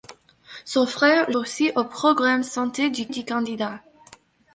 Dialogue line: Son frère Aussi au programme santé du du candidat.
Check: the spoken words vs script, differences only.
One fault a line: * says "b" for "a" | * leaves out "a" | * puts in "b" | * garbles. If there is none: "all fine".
all fine